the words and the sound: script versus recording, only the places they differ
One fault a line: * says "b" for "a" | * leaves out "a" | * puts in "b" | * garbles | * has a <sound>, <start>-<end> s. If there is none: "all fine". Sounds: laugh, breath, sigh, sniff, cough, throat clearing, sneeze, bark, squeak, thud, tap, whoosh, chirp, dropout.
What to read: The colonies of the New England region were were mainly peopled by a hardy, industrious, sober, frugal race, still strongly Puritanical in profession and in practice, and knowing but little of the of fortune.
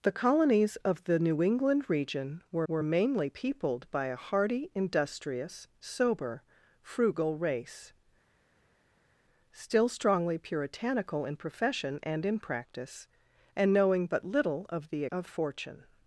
all fine